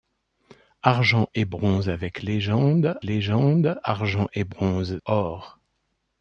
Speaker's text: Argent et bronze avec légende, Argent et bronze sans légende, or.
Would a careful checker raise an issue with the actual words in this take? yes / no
yes